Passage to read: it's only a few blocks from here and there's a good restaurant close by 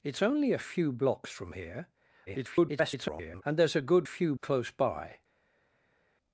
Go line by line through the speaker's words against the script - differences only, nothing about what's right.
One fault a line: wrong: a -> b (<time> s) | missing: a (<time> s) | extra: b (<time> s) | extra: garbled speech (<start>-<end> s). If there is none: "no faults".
extra: garbled speech (2.3-3.4 s)
wrong: restaurant -> few (4.0 s)